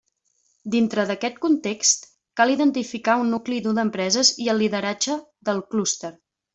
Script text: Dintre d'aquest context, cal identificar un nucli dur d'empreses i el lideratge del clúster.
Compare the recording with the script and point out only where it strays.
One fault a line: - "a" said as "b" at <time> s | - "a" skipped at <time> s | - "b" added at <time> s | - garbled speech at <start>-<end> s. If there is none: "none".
none